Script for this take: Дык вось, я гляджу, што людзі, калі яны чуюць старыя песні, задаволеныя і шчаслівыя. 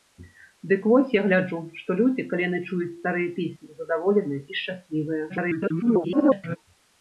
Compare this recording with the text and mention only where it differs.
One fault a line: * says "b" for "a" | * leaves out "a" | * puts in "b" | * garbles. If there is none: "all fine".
* garbles